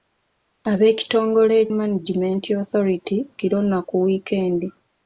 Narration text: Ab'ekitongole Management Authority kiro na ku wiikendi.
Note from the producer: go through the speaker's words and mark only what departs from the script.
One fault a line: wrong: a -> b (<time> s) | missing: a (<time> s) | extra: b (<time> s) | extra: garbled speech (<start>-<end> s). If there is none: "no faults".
no faults